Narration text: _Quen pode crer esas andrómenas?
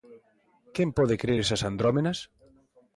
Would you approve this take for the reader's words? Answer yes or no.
yes